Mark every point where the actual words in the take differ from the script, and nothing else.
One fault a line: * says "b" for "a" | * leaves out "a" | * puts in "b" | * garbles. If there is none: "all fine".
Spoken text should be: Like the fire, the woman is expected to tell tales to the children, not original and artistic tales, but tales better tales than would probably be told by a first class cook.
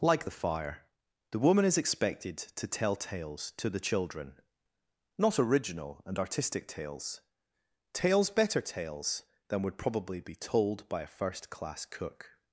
* leaves out "but"